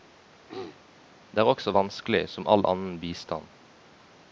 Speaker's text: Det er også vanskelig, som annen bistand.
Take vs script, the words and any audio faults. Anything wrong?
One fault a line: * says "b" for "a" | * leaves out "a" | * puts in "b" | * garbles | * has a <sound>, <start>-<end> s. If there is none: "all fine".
* has a throat clearing, 0.5-0.8 s
* puts in "all"